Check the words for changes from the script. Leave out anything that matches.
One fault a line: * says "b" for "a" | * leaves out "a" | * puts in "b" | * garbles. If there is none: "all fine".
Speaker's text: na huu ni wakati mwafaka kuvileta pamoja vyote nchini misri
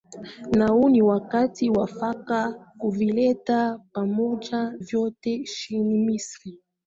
all fine